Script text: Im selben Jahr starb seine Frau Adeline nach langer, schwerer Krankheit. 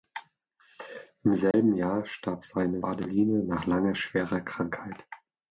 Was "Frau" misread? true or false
true